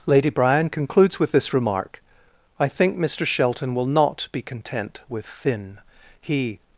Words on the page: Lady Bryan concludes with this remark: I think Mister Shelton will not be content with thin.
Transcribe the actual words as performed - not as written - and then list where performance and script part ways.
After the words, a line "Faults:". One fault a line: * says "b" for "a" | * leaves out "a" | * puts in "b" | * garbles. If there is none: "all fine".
Lady Bryan concludes with this remark: I think Mister Shelton will not be content with thin. He
Faults:
* puts in "He"